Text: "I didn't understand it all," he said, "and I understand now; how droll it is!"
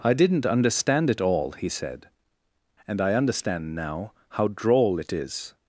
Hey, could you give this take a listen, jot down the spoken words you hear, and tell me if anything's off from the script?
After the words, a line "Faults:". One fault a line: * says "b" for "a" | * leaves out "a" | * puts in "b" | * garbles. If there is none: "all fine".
"I didn't understand it all," he said, "and I understand now; how droll it is!"
Faults:
all fine